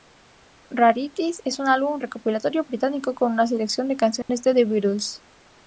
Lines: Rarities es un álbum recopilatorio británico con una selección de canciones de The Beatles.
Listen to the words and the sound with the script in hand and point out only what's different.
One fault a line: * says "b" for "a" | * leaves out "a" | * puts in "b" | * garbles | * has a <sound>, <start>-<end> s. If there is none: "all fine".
* has a dropout, 4.2-4.3 s